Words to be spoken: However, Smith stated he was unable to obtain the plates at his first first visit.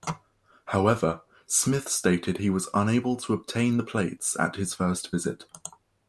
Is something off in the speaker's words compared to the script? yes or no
yes